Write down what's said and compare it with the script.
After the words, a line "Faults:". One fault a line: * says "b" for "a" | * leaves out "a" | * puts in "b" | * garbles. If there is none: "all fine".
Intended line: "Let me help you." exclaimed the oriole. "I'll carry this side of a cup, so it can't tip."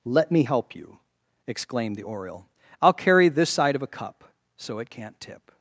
"Let me help you." exclaimed the oriole. "I'll carry this side of a cup, so it can't tip."
Faults:
all fine